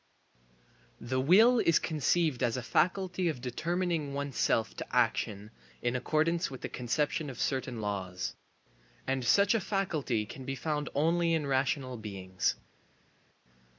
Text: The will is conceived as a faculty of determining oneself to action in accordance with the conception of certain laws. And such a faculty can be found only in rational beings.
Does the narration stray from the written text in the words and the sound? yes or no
no